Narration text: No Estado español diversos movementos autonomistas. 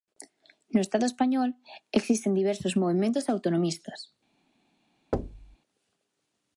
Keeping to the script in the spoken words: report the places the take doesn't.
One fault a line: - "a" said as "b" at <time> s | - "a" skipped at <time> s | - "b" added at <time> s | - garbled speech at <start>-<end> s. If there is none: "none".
- "existen" added at 1.9 s